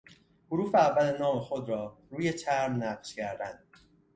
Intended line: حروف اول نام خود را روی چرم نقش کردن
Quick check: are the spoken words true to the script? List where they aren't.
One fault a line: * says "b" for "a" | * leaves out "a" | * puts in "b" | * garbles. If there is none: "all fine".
all fine